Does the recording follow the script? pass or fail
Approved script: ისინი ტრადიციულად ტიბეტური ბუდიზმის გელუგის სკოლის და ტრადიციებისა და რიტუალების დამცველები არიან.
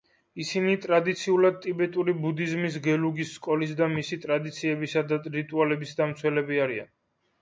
fail